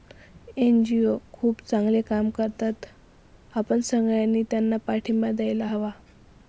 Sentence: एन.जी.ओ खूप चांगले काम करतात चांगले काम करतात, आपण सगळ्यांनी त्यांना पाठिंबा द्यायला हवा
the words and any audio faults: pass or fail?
fail